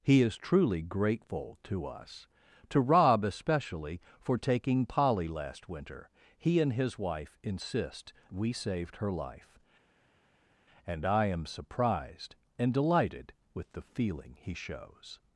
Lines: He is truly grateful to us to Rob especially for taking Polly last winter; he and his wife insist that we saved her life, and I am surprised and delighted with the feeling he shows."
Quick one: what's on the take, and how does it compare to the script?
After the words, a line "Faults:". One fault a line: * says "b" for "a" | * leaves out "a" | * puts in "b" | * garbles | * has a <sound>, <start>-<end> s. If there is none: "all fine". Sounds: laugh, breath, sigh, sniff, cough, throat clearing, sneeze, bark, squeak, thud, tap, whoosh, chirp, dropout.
He is truly grateful to us to Rob especially for taking Polly last winter; he and his wife insist we saved her life, and I am surprised and delighted with the feeling he shows."
Faults:
* leaves out "that"